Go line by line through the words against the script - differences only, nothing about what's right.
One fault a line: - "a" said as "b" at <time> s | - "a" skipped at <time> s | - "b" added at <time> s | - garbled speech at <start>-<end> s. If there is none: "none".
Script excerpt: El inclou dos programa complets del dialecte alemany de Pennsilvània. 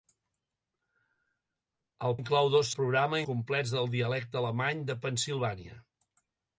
none